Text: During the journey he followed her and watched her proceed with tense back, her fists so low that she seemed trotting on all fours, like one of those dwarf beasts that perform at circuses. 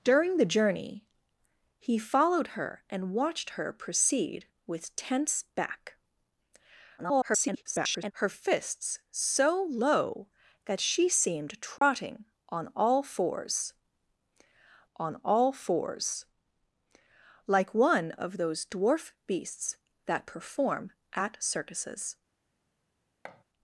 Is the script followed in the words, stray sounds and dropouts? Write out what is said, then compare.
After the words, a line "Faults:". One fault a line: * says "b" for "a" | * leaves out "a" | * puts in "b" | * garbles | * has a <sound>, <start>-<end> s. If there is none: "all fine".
During the journey he followed her and watched her proceed with tense back, [garbled] her fists so low that she seemed trotting on all fours on all fours, like one of those dwarf beasts that perform at circuses.
Faults:
* garbles
* has a dropout, 11.8-11.8 s
* puts in "on all fours"
* has a thud, 23.2-23.4 s